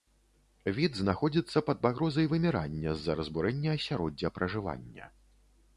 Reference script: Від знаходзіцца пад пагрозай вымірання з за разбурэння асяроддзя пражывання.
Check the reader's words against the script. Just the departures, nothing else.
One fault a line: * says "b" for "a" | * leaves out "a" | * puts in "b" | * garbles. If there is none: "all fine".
all fine